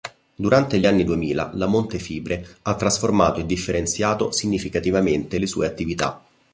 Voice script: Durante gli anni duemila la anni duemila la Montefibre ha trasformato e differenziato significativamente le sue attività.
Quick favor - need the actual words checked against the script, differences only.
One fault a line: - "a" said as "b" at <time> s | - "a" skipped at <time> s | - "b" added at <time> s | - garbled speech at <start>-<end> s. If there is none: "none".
- "anni duemila la" skipped at 1.7 s